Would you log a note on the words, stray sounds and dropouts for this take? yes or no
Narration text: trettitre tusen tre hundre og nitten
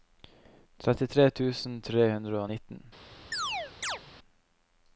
yes